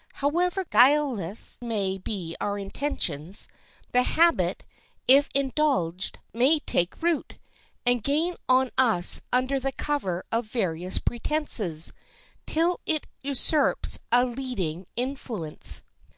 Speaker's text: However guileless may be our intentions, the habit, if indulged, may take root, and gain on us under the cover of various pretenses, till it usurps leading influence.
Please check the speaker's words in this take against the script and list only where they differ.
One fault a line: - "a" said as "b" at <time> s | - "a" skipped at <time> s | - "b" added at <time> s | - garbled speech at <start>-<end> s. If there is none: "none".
- "a" added at 14.1 s